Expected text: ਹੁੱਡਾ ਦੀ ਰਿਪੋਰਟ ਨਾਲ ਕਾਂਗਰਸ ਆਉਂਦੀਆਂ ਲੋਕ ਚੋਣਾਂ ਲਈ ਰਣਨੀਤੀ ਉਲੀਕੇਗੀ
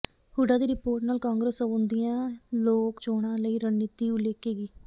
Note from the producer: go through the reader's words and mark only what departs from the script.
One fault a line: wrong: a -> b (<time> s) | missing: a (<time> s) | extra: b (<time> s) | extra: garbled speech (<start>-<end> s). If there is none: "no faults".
no faults